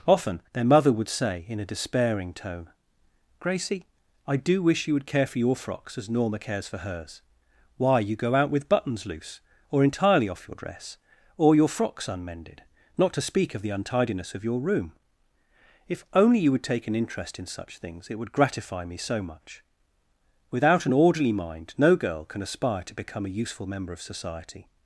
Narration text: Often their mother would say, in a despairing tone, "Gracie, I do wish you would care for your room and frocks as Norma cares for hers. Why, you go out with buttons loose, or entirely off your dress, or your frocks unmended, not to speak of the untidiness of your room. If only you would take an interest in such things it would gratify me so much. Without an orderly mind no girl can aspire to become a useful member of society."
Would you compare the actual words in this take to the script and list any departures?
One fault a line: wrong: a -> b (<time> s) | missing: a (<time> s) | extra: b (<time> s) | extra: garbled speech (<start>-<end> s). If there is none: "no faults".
missing: room and (5.5 s)